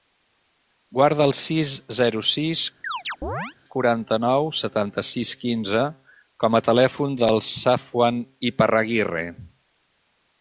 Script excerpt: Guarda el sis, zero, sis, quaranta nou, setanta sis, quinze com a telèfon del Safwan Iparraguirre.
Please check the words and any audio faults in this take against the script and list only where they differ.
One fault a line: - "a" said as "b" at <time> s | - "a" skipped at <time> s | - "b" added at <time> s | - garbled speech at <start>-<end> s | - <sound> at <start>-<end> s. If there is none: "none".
- chirp at 2.8-3.5 s